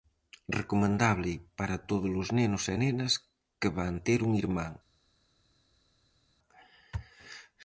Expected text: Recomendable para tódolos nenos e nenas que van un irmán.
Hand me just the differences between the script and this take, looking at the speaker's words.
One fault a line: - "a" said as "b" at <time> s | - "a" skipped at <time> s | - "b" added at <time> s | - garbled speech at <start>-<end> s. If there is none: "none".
- "ter" added at 4.1 s